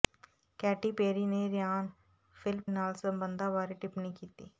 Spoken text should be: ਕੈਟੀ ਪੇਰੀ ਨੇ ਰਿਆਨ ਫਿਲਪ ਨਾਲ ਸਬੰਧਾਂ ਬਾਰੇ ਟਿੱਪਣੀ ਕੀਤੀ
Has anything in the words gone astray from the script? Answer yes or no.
no